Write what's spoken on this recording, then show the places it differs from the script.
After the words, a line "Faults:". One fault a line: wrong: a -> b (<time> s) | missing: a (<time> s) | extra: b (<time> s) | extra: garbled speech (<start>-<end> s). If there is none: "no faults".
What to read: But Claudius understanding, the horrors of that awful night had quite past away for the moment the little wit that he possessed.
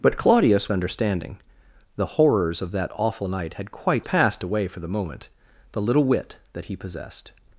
But Claudius understanding, the horrors of that awful night had quite past away for the moment the little wit that he possessed.
Faults:
no faults